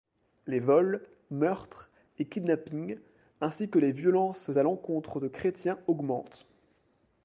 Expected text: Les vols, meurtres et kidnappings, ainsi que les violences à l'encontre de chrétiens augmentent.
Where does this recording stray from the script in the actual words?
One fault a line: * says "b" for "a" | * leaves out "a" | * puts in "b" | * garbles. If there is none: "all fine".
all fine